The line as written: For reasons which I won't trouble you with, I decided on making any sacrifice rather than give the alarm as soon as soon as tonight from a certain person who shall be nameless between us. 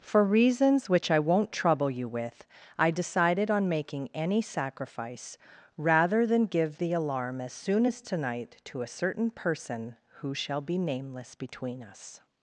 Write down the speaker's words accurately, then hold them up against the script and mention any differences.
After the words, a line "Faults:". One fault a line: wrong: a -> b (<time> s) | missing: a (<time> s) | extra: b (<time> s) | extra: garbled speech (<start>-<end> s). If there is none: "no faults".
For reasons which I won't trouble you with, I decided on making any sacrifice rather than give the alarm as soon as tonight to a certain person who shall be nameless between us.
Faults:
missing: soon as (8.0 s)
wrong: from -> to (8.6 s)